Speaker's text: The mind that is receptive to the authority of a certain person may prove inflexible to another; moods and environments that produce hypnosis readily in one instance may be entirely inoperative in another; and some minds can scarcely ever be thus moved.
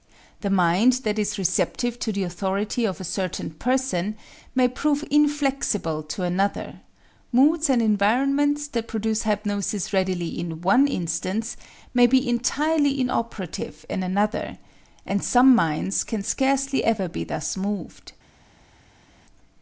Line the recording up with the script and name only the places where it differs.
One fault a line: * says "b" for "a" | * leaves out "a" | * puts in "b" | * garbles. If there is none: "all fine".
all fine